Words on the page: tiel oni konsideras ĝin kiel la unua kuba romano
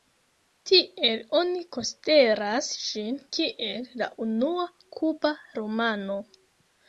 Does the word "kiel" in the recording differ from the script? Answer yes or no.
no